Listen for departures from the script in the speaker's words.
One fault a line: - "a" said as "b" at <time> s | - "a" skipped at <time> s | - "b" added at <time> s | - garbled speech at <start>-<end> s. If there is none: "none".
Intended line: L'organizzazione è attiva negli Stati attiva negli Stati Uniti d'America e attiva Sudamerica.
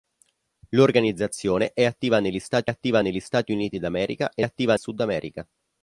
none